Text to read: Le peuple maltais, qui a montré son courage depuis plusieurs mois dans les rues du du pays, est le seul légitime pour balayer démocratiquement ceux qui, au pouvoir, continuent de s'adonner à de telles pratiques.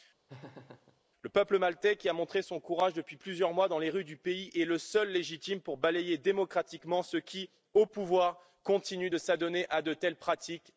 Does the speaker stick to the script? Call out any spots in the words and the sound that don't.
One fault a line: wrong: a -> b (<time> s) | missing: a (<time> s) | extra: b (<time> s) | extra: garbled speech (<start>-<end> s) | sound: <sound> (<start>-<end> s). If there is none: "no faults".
sound: laugh (0.3-1.0 s)
missing: du (4.2 s)